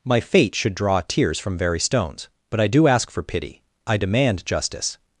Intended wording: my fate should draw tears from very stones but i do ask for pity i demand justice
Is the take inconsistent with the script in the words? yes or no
no